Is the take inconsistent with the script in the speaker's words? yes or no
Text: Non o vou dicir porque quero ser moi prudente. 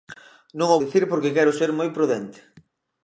yes